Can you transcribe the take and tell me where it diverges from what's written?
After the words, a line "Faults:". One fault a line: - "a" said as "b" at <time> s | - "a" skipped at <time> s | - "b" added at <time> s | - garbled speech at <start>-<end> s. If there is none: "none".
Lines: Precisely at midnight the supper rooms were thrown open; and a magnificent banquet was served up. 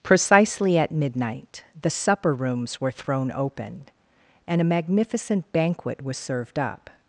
Precisely at midnight the supper rooms were thrown open; and a magnificent banquet was served up.
Faults:
none